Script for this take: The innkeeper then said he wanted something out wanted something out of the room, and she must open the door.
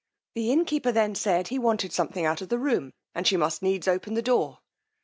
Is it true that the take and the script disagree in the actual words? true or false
true